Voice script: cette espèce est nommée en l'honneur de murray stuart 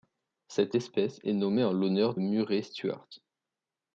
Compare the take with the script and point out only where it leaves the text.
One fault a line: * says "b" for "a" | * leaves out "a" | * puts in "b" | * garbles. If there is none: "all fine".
* leaves out "de"